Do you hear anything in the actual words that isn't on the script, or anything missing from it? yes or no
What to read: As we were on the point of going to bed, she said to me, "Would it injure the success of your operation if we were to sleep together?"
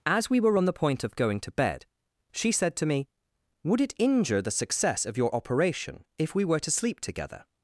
no